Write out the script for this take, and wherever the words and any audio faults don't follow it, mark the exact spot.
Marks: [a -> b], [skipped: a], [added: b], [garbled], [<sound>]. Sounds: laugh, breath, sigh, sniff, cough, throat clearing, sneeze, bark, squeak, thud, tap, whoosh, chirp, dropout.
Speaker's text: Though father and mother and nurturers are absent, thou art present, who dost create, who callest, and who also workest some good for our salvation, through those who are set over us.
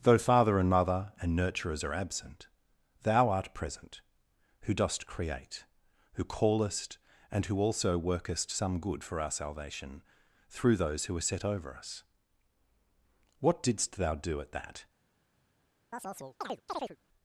Though father and mother and nurturers are absent, thou art present, who dost create, who callest, and who also workest some good for our salvation, through those who are set over us. [added: What didst thou do at that] [chirp]